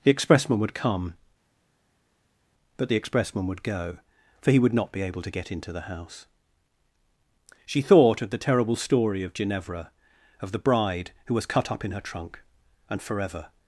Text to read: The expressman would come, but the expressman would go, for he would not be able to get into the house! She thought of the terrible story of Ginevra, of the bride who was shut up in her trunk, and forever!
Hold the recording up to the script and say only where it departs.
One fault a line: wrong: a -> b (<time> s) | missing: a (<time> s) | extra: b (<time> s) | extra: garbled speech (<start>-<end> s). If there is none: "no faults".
wrong: shut -> cut (11.4 s)